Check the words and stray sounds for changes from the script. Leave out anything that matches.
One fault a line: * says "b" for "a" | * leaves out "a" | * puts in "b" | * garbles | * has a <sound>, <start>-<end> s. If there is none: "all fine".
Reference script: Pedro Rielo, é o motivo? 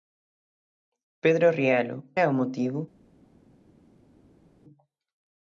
all fine